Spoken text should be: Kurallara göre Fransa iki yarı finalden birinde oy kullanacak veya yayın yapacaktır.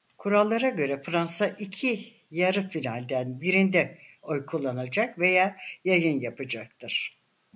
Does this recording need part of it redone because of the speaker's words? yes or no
no